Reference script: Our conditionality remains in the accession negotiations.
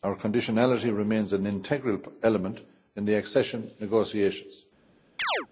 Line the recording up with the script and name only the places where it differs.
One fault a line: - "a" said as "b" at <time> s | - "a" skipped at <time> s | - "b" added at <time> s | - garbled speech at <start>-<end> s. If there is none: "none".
- "an integral element" added at 1.3 s